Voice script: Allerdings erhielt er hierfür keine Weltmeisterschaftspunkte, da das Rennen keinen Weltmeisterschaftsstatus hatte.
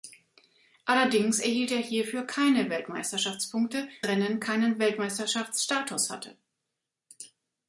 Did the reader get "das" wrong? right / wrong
wrong